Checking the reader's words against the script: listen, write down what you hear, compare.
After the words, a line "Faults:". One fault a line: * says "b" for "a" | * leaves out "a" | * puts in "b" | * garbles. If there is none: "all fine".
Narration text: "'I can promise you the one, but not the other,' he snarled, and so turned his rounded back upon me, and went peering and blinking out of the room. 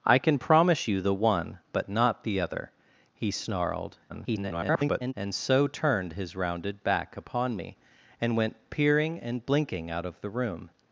"'I can promise you the one, but not the other,' he snarled, [garbled] and so turned his rounded back upon me, and went peering and blinking out of the room.
Faults:
* garbles